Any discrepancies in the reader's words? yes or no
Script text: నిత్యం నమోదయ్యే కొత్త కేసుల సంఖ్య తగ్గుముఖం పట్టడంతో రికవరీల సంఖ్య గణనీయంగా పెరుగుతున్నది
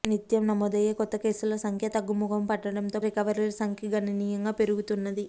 no